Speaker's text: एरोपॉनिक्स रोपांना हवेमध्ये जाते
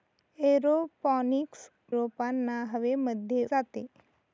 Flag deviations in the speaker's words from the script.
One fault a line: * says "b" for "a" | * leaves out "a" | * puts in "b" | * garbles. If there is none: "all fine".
all fine